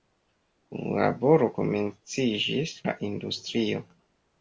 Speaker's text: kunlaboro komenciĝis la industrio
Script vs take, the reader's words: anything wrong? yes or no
no